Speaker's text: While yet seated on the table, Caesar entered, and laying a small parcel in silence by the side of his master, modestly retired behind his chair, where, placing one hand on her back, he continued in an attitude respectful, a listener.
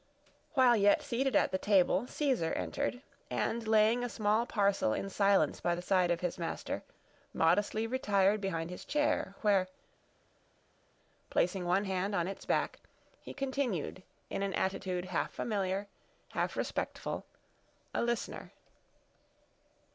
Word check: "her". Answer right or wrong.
wrong